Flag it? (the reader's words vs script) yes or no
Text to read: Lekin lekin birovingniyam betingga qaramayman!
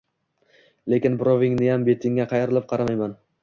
yes